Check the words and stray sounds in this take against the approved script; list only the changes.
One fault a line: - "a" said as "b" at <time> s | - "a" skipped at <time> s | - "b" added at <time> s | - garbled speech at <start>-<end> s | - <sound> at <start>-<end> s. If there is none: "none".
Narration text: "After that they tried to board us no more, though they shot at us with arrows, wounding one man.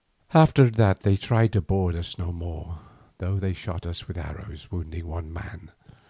- "at" skipped at 3.9 s